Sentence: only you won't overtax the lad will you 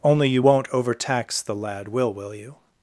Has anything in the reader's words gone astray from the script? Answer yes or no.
yes